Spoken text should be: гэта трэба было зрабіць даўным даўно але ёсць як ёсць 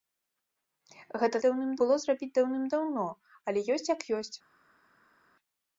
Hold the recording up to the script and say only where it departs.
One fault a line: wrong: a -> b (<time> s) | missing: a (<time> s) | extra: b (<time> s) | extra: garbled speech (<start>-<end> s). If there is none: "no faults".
wrong: трэба -> даўным (1.4 s)